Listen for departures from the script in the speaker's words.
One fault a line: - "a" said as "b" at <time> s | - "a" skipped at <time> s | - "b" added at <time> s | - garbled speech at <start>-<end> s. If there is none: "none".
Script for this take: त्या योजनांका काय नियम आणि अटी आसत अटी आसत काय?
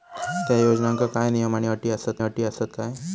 none